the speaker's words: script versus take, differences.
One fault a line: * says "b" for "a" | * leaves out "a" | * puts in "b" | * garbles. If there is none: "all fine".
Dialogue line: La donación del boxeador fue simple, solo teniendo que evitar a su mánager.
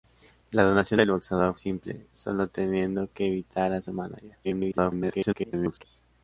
* leaves out "fue"
* garbles